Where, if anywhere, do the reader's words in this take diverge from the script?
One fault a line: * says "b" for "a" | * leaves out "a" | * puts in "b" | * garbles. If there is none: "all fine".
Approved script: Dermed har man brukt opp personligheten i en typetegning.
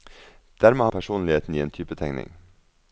* leaves out "man brukt opp"